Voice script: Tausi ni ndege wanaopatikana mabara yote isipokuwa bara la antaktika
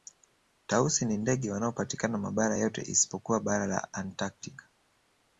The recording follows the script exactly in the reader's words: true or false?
true